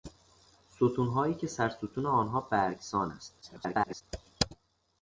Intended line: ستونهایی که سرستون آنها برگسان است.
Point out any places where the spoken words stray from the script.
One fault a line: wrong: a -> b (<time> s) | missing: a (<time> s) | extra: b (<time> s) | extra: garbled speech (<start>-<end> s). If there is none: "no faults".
extra: garbled speech (3.4-4.0 s)